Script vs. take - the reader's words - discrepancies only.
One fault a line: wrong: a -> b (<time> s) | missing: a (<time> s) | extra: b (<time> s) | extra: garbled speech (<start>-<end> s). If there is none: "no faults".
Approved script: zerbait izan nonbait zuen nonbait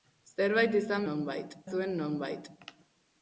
no faults